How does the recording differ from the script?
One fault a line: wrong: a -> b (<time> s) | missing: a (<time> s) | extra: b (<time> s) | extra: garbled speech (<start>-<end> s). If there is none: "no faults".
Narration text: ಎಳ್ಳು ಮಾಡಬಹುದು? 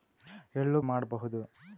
no faults